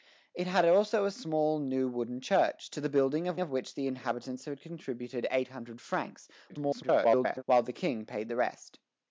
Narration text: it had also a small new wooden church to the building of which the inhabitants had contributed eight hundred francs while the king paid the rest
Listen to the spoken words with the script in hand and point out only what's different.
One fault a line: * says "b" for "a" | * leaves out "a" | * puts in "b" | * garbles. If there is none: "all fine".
* puts in "of"
* garbles